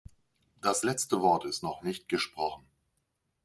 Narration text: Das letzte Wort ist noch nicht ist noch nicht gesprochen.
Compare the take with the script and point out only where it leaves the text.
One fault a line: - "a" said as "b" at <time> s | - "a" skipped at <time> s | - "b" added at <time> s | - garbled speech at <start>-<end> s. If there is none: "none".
- "ist noch nicht" skipped at 2.1 s